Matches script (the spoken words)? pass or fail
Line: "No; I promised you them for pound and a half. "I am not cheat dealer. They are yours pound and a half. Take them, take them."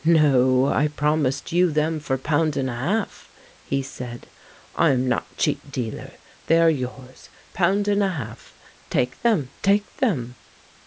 fail